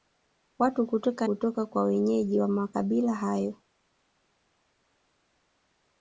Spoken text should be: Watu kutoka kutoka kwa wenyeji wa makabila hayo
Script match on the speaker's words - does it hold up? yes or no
yes